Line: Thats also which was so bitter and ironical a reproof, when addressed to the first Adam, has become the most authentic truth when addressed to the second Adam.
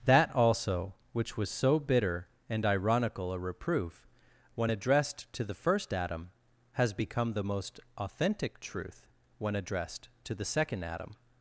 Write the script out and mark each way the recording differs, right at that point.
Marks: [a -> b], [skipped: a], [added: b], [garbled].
[Thats -> That] also which was so bitter and ironical a reproof, when addressed to the first Adam, has become the most authentic truth when addressed to the second Adam.